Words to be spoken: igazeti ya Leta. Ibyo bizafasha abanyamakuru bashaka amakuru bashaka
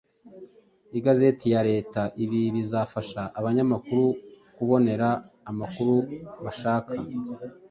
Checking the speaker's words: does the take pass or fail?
fail